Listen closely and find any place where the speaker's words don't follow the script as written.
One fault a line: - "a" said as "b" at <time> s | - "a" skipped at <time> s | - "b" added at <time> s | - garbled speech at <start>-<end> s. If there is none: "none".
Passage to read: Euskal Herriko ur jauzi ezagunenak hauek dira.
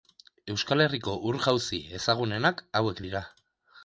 none